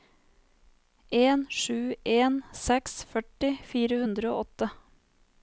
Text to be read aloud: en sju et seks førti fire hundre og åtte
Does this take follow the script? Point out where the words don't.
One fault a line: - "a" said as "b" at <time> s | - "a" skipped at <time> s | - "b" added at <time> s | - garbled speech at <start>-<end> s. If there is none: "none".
- "et" said as "en" at 2.1 s